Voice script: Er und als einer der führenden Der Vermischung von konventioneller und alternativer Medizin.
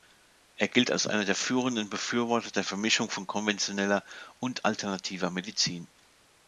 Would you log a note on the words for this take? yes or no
yes